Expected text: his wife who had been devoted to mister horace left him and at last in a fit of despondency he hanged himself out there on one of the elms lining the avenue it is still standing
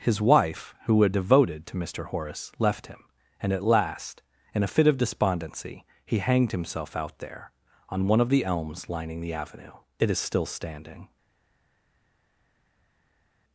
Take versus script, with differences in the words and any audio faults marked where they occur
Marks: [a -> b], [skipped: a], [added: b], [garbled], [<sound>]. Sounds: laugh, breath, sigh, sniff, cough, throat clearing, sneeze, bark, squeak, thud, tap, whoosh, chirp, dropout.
his wife who had [skipped: been] devoted to mister horace left him and at last in a fit of despondency he hanged himself out there on one of the elms lining the avenue it is still standing